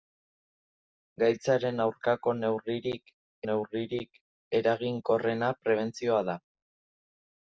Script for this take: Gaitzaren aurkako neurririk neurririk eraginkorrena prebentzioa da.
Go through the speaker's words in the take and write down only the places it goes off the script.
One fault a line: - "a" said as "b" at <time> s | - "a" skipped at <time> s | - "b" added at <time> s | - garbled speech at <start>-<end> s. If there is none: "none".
none